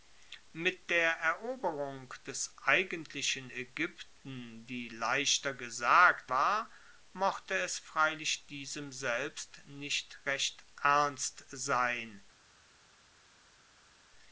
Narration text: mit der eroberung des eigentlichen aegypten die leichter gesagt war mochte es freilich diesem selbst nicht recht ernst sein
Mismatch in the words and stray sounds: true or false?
false